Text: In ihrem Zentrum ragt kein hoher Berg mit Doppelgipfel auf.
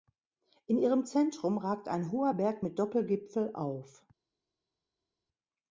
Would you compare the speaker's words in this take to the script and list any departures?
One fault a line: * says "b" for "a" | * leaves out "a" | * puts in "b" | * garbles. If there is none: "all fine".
* says "ein" for "kein"